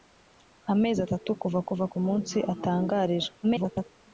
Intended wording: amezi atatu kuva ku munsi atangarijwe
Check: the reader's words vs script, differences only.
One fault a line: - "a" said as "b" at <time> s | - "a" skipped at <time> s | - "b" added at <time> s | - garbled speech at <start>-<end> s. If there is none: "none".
- "kuva" added at 1.7 s
- garbled speech at 3.4-3.9 s